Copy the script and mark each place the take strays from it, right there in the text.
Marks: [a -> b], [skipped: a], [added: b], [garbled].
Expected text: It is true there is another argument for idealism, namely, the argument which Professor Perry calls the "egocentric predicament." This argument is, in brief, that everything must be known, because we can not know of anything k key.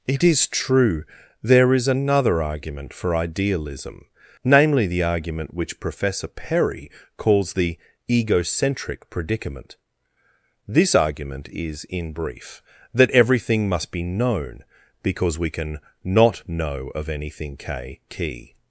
It is true there is another argument for idealism, namely, the argument which Professor Perry calls the "egocentric predicament." This argument is, in brief, that everything must be known, because we can not know of anything k key.